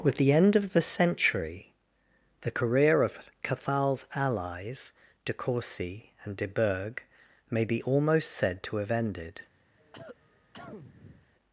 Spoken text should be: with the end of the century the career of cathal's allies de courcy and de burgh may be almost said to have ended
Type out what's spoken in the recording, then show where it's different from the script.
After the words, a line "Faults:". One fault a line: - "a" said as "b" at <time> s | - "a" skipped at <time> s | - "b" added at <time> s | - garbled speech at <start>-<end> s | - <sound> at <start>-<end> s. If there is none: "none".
with the end of the century the career of cathal's allies de courcy and de burgh may be almost said to have ended
Faults:
- cough at 9.8-11.3 s